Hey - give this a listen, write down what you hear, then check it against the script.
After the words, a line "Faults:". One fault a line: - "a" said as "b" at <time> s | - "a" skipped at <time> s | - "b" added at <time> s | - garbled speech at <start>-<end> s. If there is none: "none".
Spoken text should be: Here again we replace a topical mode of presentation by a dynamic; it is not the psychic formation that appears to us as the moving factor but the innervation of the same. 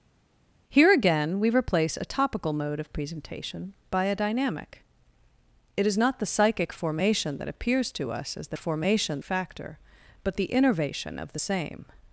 Here again we replace a topical mode of presentation by a dynamic; it is not the psychic formation that appears to us as the formation factor but the innervation of the same.
Faults:
- "moving" said as "formation" at 8.6 s